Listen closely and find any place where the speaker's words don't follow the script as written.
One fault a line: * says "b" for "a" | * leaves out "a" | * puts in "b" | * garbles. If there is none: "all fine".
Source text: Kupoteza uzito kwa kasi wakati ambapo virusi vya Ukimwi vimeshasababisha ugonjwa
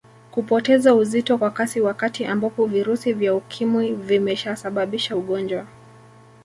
all fine